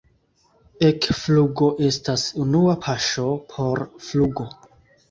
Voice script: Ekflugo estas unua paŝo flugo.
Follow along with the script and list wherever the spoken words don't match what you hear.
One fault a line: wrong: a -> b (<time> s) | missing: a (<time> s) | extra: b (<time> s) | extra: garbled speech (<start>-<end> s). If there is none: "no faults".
extra: por (3.6 s)